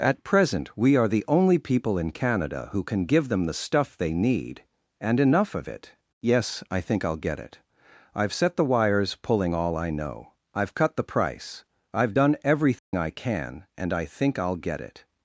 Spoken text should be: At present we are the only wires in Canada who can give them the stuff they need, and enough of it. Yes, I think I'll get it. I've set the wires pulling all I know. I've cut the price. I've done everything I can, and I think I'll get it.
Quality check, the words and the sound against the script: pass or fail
fail